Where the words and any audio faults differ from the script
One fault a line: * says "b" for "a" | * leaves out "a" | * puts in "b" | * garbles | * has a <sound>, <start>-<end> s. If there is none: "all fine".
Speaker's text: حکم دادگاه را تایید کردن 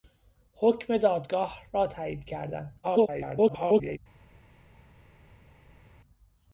* garbles